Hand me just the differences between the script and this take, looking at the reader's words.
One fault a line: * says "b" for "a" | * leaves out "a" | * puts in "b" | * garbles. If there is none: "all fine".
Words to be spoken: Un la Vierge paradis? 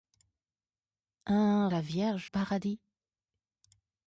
all fine